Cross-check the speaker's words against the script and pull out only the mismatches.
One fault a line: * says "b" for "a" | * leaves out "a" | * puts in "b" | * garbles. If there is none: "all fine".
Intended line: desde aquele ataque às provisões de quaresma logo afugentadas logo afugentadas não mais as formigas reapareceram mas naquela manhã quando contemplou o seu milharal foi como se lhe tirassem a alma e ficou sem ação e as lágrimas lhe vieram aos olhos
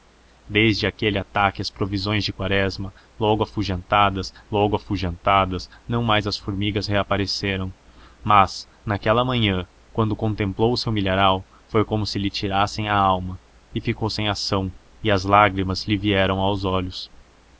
all fine